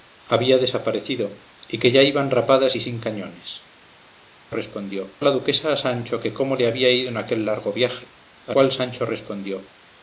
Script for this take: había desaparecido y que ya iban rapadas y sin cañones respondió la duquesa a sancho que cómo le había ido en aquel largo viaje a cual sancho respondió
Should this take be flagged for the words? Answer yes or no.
no